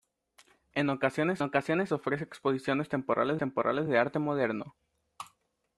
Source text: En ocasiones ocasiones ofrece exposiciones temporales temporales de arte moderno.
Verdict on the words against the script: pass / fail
pass